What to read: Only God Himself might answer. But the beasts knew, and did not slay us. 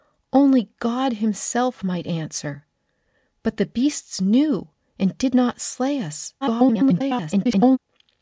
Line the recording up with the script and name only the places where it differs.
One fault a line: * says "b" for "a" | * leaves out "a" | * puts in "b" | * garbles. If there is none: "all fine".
* garbles